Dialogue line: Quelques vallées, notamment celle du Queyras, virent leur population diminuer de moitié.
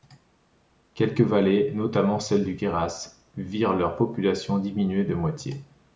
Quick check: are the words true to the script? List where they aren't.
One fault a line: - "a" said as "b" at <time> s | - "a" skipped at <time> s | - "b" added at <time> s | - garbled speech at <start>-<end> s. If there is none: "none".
none